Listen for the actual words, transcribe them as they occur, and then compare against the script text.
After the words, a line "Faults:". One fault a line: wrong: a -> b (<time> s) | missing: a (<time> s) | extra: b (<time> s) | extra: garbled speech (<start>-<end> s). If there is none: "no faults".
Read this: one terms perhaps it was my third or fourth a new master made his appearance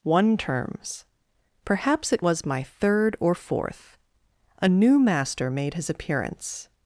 one terms perhaps it was my third or fourth a new master made his appearance
Faults:
no faults